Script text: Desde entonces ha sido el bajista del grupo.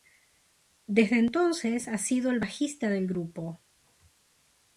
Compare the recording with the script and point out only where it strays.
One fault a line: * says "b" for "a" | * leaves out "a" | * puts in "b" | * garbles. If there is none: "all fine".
all fine